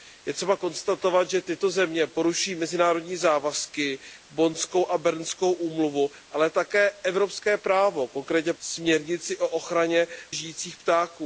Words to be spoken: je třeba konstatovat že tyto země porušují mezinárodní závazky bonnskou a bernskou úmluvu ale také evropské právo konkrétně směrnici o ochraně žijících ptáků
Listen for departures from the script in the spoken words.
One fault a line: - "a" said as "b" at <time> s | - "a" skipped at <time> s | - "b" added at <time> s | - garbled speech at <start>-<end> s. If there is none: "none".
none